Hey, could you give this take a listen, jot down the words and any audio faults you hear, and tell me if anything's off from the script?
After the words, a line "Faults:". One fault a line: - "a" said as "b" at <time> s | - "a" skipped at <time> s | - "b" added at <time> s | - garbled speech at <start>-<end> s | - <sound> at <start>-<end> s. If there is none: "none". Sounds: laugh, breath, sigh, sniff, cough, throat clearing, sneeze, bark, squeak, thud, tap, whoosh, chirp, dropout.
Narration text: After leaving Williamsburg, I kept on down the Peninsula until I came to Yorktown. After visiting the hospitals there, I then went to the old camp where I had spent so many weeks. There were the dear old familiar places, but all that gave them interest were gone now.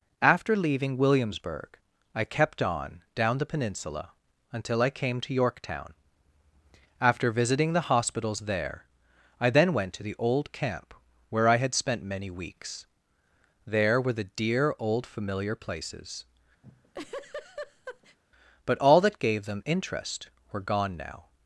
After leaving Williamsburg, I kept on down the Peninsula until I came to Yorktown. After visiting the hospitals there, I then went to the old camp where I had spent many weeks. There were the dear old familiar places, but all that gave them interest were gone now.
Faults:
- "so" skipped at 12.0 s
- laugh at 16.6-18.2 s